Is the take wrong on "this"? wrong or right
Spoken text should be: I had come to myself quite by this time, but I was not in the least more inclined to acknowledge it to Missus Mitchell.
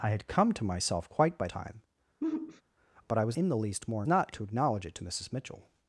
wrong